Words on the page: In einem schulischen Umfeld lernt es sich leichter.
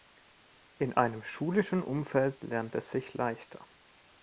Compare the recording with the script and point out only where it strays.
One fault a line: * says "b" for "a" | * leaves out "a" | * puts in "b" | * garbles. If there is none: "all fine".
all fine